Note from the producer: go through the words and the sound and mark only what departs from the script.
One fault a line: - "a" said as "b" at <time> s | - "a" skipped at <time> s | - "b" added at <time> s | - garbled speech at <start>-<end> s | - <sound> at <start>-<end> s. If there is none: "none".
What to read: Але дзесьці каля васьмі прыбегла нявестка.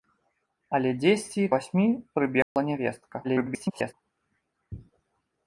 - "каля" skipped at 1.4 s
- dropout at 2.4-2.6 s
- garbled speech at 3.2-3.9 s